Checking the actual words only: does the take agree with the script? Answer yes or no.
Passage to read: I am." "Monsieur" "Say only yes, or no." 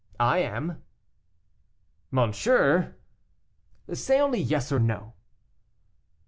yes